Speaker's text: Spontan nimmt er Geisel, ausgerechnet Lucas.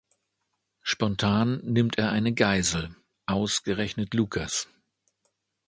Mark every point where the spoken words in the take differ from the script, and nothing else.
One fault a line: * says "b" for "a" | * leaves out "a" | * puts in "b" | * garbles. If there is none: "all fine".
* puts in "eine"